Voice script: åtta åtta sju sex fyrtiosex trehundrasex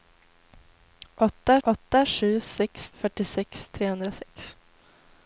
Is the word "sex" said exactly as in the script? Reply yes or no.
yes